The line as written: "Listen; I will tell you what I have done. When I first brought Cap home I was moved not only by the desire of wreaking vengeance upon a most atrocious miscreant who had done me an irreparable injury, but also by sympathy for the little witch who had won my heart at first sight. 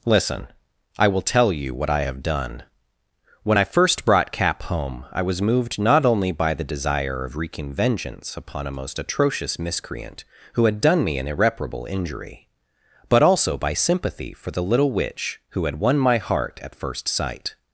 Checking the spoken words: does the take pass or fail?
pass